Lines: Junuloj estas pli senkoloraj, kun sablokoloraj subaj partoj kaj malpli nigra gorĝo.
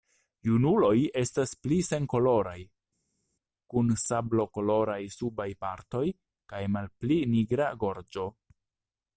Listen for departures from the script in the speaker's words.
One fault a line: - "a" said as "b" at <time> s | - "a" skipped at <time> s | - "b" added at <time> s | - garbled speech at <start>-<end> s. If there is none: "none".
none